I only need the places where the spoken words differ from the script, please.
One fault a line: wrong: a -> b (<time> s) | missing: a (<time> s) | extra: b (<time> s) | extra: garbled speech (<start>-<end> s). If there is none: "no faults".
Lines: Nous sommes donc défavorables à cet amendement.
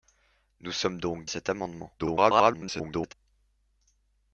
missing: défavorables (1.3 s)
extra: garbled speech (2.0-3.1 s)